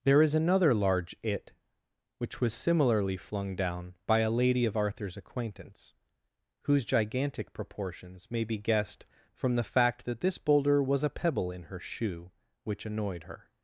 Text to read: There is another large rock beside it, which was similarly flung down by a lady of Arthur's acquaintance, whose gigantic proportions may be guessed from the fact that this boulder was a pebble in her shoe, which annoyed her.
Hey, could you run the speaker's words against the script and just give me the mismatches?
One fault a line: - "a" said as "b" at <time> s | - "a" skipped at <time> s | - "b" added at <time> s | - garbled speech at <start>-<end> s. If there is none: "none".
- "rock beside" skipped at 1.1 s